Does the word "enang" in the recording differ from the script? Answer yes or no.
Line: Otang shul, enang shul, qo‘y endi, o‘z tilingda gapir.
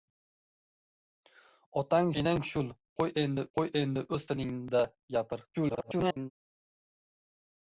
yes